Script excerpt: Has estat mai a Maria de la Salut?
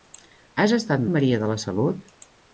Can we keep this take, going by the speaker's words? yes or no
no